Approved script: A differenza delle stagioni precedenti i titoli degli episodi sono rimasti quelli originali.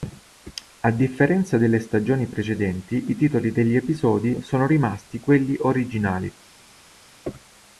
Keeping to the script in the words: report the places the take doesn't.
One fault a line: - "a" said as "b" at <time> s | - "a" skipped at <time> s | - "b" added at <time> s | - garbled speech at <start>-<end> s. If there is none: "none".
none